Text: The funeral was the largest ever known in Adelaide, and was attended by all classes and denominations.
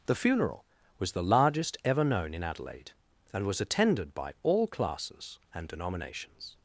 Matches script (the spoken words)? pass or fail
pass